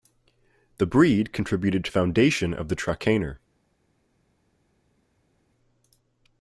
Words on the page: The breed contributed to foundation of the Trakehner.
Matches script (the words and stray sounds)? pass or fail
pass